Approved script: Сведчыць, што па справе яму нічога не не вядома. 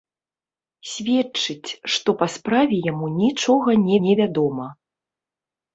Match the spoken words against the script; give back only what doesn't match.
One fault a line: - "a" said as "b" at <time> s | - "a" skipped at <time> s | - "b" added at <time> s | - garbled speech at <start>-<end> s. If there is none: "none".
none